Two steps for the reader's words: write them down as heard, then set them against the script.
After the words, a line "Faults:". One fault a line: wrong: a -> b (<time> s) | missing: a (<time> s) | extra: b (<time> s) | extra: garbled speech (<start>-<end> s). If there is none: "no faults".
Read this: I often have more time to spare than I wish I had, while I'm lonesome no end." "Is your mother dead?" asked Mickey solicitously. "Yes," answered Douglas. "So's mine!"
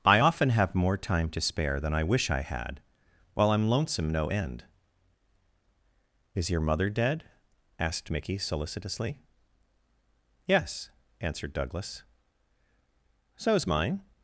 I often have more time to spare than I wish I had, while I'm lonesome no end." "Is your mother dead?" asked Mickey solicitously. "Yes," answered Douglas. "So's mine!"
Faults:
no faults